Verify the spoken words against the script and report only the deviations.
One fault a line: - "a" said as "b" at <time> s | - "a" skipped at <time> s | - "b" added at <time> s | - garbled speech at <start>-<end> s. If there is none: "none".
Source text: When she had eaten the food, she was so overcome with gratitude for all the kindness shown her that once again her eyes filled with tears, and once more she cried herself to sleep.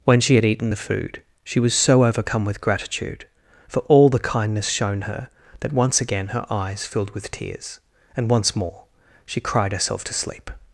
none